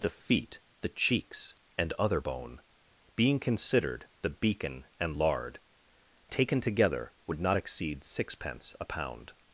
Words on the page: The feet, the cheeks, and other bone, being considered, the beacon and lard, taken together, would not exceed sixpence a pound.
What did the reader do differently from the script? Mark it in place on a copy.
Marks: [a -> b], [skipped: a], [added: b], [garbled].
The feet, the cheeks, and other bone, being considered, the beacon and lard, taken together, would not exceed sixpence a pound.